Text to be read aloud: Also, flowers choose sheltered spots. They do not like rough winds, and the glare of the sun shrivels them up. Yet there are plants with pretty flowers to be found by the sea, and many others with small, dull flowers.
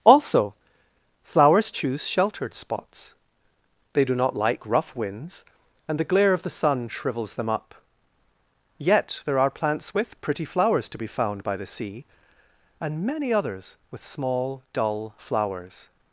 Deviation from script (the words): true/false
false